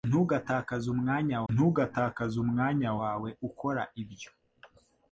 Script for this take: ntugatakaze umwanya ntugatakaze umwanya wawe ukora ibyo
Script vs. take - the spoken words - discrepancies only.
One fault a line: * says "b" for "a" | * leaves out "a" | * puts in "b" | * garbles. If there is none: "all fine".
all fine